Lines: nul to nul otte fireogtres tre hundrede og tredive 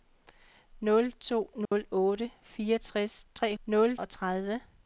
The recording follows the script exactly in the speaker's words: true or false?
false